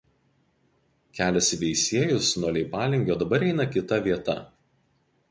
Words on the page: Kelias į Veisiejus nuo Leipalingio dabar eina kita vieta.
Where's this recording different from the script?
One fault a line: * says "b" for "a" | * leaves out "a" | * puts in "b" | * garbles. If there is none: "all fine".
all fine